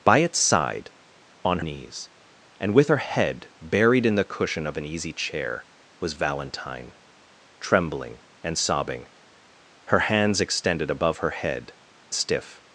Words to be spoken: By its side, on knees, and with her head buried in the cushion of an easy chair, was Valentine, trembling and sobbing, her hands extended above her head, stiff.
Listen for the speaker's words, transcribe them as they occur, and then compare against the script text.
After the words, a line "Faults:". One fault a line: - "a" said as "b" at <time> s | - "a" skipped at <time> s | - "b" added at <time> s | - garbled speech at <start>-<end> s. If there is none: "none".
By its side, on knees, and with her head buried in the cushion of an easy chair, was Valentine, trembling and sobbing, her hands extended above her head, stiff.
Faults:
none